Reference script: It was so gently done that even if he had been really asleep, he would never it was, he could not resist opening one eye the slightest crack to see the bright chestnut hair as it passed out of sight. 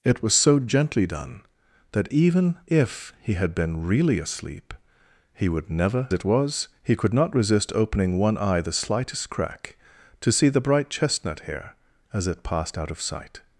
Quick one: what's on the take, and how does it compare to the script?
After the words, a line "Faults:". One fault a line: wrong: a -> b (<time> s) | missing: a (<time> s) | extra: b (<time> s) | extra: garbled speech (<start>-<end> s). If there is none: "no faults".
It was so gently done that even if he had been really asleep, he would never it was, he could not resist opening one eye the slightest crack to see the bright chestnut hair as it passed out of sight.
Faults:
no faults